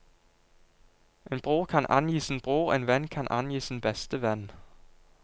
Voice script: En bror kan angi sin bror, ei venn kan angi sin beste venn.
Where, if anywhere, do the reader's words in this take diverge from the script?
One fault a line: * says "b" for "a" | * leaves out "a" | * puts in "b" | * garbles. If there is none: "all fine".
* says "en" for "ei"